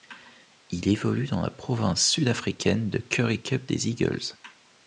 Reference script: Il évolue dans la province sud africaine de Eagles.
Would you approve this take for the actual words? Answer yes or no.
no